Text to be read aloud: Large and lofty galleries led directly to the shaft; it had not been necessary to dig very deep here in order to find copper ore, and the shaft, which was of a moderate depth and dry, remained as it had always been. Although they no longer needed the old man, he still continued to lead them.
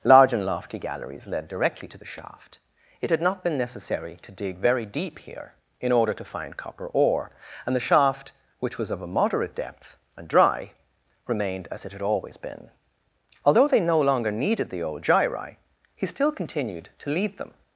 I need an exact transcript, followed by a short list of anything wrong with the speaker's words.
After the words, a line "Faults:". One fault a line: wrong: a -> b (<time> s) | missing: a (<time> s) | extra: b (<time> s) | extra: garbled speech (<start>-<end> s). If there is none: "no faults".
Large and lofty galleries led directly to the shaft; it had not been necessary to dig very deep here in order to find copper ore, and the shaft, which was of a moderate depth and dry, remained as it had always been. Although they no longer needed the old gyri, he still continued to lead them.
Faults:
wrong: man -> gyri (15.0 s)